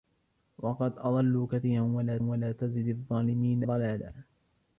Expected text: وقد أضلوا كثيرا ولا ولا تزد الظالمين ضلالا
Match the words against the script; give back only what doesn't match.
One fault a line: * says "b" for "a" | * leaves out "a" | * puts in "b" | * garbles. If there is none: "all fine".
all fine